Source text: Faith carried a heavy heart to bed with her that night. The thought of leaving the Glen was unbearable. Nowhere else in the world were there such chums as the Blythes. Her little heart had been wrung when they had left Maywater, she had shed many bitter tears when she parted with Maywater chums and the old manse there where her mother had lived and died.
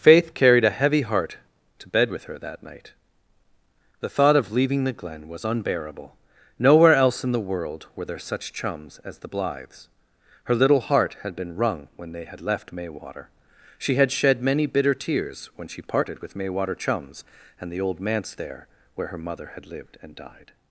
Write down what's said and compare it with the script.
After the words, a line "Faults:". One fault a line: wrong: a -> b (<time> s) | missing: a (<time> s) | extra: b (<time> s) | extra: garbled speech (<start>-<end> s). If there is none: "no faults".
Faith carried a heavy heart to bed with her that night. The thought of leaving the Glen was unbearable. Nowhere else in the world were there such chums as the Blythes. Her little heart had been wrung when they had left Maywater, she had shed many bitter tears when she parted with Maywater chums and the old manse there where her mother had lived and died.
Faults:
no faults